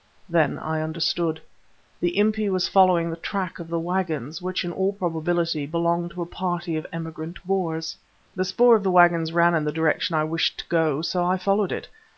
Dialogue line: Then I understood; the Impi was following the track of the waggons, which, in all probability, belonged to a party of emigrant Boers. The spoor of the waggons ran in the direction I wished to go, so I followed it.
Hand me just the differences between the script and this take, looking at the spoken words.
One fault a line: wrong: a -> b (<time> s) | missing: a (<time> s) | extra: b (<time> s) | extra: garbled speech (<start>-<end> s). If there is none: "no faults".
no faults